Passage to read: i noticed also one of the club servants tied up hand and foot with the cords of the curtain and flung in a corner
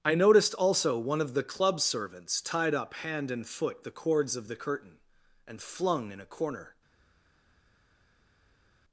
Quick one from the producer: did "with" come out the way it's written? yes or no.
no